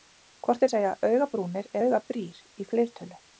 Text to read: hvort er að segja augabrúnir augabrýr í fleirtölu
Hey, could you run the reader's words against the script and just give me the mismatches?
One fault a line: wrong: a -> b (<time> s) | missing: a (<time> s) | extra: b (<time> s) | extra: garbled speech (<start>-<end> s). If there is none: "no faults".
no faults